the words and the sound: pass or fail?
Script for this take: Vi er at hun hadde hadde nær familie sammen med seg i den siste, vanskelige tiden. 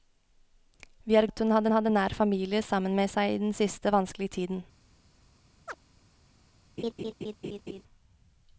fail